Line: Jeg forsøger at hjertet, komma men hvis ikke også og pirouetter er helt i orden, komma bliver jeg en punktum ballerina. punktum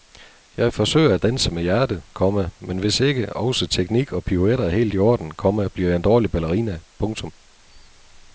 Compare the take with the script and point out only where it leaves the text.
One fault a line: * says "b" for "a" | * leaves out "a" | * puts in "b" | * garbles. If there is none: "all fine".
* puts in "danse med"
* puts in "teknik"
* says "dårlig" for "punktum"